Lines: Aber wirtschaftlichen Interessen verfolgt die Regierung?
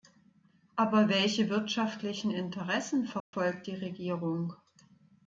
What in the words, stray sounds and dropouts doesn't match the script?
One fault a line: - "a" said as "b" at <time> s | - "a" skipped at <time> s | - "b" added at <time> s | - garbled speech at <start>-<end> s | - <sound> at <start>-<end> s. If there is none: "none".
- "welche" added at 1.1 s
- dropout at 3.2-3.3 s